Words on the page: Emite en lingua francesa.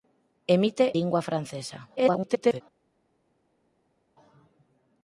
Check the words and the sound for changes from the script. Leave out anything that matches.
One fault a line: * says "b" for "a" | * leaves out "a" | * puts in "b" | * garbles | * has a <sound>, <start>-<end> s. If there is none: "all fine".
* leaves out "en"
* garbles